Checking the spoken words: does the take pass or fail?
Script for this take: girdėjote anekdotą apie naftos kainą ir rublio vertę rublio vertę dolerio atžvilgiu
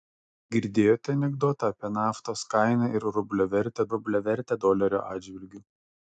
pass